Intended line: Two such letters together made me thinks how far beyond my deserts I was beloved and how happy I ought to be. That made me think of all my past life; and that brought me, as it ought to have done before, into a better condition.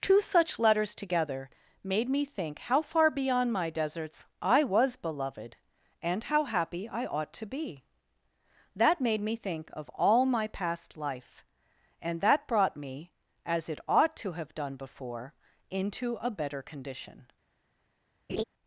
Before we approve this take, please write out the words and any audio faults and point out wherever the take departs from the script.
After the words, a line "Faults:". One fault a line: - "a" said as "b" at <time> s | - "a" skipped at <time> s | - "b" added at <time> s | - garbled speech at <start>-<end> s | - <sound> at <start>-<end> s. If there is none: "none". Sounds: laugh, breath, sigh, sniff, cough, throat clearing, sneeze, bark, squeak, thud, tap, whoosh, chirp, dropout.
Two such letters together made me think how far beyond my deserts I was beloved and how happy I ought to be. That made me think of all my past life; and that brought me, as it ought to have done before, into a better condition.
Faults:
- "thinks" said as "think" at 2.2 s
- laugh at 18.3-18.4 s